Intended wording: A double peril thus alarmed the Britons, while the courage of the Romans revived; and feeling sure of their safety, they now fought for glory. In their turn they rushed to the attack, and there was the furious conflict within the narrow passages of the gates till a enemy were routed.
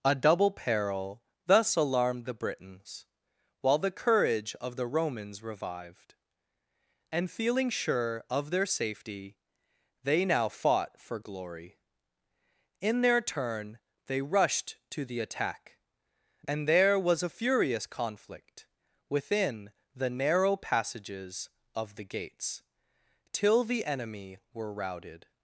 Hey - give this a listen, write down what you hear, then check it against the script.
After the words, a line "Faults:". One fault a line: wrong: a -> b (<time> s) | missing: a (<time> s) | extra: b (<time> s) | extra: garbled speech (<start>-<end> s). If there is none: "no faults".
A double peril thus alarmed the Britons, while the courage of the Romans revived; and feeling sure of their safety, they now fought for glory. In their turn they rushed to the attack, and there was a furious conflict within the narrow passages of the gates till the enemy were routed.
Faults:
wrong: the -> a (17.2 s)
wrong: a -> the (23.7 s)